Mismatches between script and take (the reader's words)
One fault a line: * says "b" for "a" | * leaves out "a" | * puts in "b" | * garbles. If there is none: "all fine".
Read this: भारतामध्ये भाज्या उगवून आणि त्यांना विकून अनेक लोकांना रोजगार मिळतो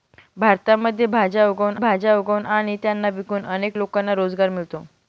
* puts in "भाज्या उगवून"